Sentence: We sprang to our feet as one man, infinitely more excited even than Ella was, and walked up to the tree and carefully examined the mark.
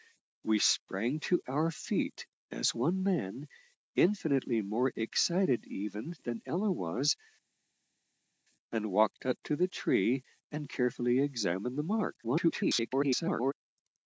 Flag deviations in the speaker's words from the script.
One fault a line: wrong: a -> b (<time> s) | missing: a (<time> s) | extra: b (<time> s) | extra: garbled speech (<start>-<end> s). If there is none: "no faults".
extra: garbled speech (12.2-13.5 s)